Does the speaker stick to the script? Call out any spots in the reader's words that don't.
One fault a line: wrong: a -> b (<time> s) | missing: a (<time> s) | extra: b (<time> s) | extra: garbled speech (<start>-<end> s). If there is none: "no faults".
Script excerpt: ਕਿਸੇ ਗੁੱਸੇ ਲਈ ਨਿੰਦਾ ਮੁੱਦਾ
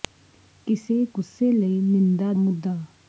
no faults